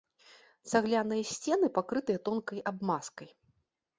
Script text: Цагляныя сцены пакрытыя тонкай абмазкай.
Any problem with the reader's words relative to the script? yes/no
no